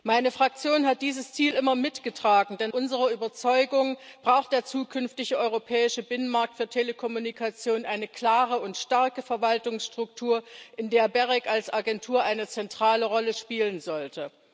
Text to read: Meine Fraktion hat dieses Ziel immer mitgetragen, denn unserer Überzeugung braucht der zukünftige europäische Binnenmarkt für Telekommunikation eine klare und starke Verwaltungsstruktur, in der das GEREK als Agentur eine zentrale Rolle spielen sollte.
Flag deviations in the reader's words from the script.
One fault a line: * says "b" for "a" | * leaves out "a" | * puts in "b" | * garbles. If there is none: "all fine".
all fine